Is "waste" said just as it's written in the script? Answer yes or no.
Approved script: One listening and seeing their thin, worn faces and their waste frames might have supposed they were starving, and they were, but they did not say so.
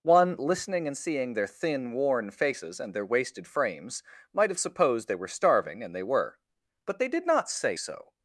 no